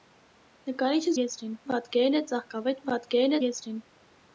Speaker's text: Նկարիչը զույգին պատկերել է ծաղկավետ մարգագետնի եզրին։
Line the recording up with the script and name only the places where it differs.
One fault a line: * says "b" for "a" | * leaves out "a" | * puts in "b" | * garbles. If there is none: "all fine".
* says "եզրին" for "զույգին"
* says "պատկերել" for "մարգագետնի"